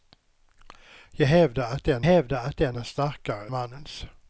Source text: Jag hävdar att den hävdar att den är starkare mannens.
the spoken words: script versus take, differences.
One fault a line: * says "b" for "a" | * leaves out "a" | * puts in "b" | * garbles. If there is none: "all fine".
all fine